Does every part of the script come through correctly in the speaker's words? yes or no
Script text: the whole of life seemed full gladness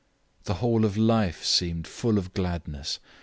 no